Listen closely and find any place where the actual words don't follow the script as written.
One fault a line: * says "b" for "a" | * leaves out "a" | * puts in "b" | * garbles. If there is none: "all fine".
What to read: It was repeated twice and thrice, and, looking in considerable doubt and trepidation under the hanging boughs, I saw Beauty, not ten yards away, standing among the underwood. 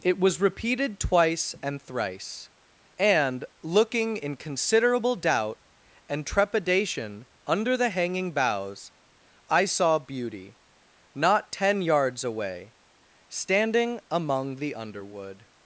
all fine